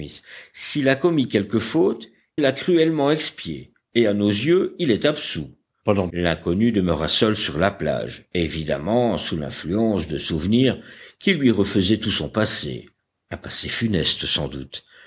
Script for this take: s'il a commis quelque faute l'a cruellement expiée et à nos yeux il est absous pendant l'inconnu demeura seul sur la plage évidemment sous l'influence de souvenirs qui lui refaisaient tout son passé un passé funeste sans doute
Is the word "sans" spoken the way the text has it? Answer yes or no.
yes